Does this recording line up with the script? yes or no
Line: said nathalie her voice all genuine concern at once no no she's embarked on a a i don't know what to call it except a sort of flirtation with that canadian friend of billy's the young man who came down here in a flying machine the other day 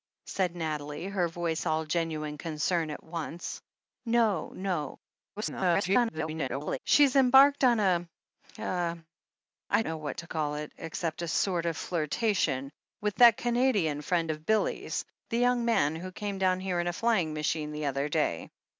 no